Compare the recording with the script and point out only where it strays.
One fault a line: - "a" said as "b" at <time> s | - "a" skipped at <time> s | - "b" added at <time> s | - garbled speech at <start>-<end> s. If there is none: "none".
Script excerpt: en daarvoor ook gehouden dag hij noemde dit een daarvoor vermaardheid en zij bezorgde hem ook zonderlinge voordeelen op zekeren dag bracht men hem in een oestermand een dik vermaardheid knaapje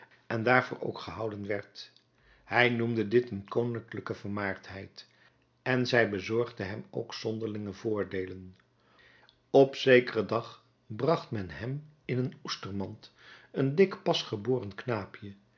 - "dag" said as "werd" at 1.5 s
- "daarvoor" said as "koninklijke" at 3.5 s
- "vermaardheid" said as "pasgeboren" at 14.0 s